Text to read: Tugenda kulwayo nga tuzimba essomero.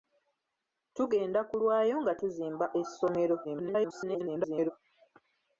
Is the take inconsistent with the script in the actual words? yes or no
yes